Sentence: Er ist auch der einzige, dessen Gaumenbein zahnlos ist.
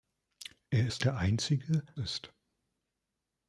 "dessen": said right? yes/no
no